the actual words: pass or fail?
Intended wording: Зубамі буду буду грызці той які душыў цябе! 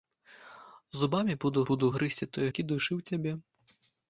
pass